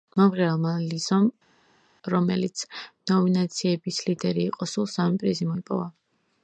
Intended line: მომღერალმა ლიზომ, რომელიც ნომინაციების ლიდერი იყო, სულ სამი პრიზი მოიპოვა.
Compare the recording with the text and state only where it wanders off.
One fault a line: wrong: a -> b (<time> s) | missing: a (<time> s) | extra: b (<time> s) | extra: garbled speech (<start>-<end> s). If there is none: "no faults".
no faults